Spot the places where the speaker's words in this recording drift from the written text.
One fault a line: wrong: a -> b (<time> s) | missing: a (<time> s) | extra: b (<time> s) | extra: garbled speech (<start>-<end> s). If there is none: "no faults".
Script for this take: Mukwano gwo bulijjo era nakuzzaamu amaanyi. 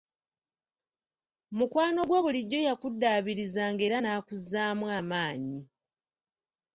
extra: yakuddaabirizanga (2.7 s)